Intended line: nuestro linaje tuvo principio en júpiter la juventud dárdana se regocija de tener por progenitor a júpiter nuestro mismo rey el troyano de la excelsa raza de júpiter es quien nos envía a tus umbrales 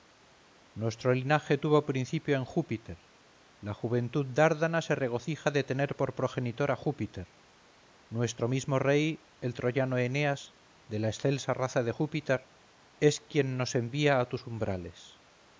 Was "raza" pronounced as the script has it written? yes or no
yes